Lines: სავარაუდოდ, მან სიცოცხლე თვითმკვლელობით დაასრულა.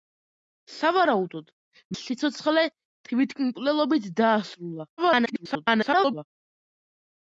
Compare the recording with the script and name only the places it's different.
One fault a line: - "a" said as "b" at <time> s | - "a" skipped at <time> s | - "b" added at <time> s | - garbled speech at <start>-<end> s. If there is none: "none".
- "მან" skipped at 1.5 s
- garbled speech at 5.0-6.3 s